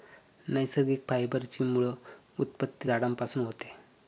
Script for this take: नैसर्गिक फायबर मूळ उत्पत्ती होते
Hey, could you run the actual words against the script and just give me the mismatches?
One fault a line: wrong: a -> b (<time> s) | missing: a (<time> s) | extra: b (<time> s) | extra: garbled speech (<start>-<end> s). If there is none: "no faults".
extra: ची (1.5 s)
extra: झाडांपासून (2.9 s)